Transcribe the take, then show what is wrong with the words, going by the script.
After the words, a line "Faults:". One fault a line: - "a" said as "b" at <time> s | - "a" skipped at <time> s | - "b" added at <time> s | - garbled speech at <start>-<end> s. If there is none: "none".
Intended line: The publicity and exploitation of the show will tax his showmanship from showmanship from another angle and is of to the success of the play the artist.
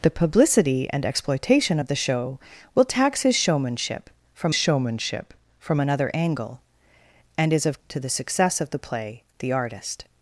The publicity and exploitation of the show will tax his showmanship from showmanship from another angle and is of to the success of the play the artist.
Faults:
none